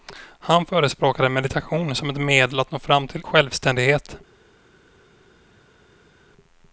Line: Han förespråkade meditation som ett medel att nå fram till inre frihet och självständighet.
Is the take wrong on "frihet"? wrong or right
wrong